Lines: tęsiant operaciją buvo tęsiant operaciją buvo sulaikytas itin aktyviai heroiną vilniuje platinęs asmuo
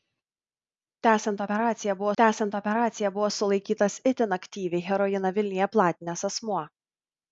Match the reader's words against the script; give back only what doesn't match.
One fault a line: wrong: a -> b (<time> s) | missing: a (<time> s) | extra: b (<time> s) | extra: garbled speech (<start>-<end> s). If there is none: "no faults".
no faults